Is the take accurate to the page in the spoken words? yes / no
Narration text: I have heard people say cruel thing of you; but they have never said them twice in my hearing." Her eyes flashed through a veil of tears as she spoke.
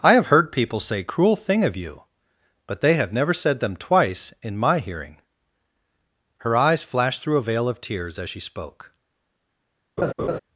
yes